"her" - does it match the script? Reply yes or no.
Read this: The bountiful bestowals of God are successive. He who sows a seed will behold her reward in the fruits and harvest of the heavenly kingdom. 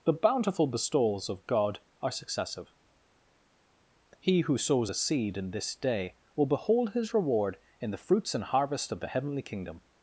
no